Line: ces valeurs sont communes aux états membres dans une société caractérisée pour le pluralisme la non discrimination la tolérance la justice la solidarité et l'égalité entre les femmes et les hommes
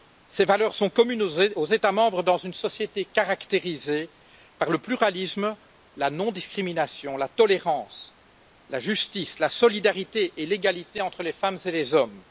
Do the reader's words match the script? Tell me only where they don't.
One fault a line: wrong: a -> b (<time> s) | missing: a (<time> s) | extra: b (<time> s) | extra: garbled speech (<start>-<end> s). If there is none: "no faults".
wrong: pour -> par (4.6 s)